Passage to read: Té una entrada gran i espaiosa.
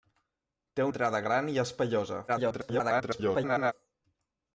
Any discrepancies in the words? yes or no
yes